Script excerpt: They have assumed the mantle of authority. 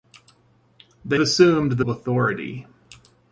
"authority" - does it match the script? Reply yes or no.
yes